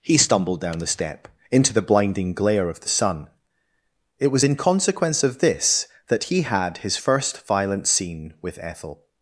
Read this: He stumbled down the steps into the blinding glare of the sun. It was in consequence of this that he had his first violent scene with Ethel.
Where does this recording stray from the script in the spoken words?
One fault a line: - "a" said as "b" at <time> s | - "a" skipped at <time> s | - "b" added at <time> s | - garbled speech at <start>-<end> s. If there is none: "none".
- "steps" said as "step" at 0.9 s